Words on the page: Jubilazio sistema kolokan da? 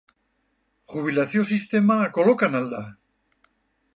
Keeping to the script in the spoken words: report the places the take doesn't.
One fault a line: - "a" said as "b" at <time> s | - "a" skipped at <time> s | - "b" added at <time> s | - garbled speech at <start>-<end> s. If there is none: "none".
- "al" added at 2.6 s